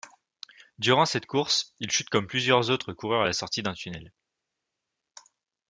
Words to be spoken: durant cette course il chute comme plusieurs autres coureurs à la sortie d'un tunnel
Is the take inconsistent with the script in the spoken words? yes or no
no